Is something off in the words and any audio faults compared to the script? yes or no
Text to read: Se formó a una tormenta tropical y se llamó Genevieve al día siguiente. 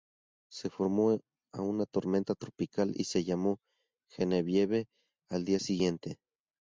no